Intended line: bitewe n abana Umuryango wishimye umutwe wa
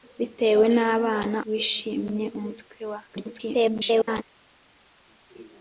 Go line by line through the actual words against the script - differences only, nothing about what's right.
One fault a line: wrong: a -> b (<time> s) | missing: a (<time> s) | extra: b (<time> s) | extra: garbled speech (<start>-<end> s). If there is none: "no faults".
missing: Umuryango (1.4 s)
extra: garbled speech (3.1-4.2 s)